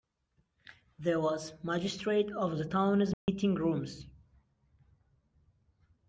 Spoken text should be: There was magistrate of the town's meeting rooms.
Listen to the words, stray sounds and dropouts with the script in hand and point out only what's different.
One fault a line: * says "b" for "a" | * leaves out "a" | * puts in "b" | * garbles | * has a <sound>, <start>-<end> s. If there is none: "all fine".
* has a dropout, 3.1-3.3 s